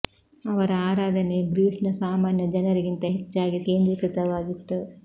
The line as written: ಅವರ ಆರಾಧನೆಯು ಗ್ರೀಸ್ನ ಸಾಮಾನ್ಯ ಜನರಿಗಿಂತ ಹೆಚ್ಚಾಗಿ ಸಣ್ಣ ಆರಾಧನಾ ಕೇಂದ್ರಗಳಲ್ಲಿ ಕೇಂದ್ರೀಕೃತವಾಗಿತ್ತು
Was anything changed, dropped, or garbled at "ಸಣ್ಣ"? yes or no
yes